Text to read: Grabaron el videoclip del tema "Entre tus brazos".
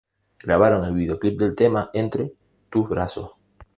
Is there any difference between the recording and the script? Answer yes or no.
no